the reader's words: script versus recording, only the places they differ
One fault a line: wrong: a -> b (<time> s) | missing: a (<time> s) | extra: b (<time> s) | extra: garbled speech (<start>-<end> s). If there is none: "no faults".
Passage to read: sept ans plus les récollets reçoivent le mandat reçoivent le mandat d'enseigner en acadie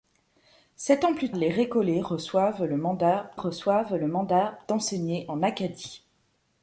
no faults